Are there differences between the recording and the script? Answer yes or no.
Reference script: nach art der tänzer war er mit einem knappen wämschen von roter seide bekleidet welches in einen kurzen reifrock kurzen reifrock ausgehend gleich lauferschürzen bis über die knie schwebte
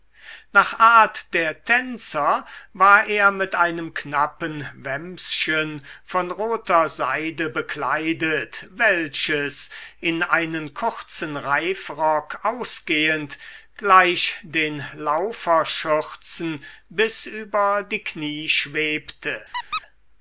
yes